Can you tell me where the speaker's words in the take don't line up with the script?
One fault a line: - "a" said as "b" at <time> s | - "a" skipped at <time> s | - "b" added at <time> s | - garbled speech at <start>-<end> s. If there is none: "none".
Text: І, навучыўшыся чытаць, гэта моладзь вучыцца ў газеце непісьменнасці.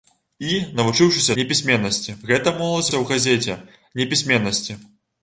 - "чытаць" said as "непісьменнасці" at 1.4 s
- "вучыцца" skipped at 2.9 s